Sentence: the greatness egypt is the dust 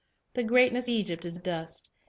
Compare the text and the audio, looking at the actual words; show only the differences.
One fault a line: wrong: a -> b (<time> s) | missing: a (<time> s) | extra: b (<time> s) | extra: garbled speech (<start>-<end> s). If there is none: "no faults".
no faults